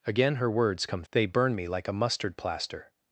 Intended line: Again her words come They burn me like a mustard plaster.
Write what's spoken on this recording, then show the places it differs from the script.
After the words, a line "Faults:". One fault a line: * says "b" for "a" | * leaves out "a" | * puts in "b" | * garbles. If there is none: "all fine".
Again her words come They burn me like a mustard plaster.
Faults:
all fine